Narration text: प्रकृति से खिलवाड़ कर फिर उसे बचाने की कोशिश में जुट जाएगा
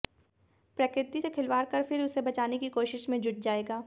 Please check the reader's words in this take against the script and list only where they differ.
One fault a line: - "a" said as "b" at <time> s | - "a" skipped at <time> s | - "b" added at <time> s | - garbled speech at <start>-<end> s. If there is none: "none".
none